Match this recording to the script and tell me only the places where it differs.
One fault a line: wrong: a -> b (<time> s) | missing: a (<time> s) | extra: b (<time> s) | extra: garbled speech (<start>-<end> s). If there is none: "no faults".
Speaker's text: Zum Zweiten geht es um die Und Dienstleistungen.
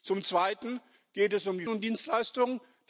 no faults